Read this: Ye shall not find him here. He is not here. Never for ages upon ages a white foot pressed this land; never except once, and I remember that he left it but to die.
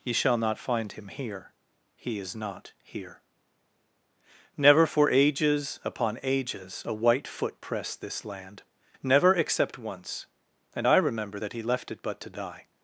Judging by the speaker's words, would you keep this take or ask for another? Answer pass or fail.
pass